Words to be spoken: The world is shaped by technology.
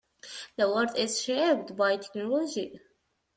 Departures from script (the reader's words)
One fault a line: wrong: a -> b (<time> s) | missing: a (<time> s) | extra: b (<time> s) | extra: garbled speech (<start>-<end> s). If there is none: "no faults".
no faults